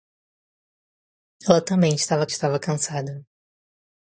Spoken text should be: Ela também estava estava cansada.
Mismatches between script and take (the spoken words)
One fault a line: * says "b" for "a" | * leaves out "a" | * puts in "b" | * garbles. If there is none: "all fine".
all fine